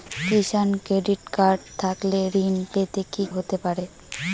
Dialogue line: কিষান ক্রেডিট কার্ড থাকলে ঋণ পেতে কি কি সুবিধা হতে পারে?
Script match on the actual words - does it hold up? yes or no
no